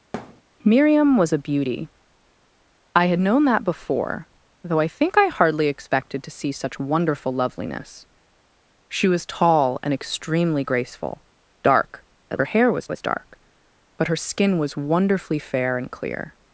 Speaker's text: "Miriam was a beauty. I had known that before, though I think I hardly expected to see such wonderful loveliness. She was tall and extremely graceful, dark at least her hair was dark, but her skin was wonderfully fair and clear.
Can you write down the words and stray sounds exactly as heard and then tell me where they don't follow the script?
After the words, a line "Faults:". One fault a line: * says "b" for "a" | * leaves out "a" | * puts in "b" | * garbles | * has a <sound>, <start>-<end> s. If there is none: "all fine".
"Miriam was a beauty. I had known that before, though I think I hardly expected to see such wonderful loveliness. She was tall and extremely graceful, dark at her hair was was dark, but her skin was wonderfully fair and clear.
Faults:
* has a thud, 0.1-0.4 s
* leaves out "least"
* puts in "was"